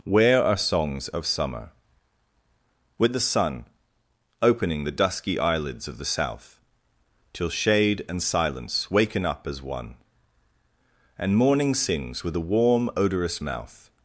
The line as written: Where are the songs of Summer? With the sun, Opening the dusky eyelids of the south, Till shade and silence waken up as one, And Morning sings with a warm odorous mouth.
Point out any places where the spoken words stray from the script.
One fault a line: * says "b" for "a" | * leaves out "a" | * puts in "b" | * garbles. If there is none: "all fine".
* leaves out "the"